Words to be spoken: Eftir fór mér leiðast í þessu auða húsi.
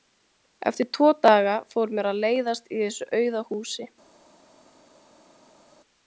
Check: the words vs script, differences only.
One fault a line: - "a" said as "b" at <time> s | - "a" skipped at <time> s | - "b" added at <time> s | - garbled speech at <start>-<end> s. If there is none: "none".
- "tvo daga" added at 1.0 s
- "að" added at 2.1 s